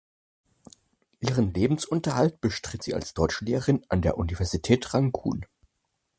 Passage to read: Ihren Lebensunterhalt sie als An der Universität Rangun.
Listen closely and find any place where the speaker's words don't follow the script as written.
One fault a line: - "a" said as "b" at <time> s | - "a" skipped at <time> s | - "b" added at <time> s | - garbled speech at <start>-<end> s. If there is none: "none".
- "bestritt" added at 2.4 s
- "Deutschlehrerin" added at 3.1 s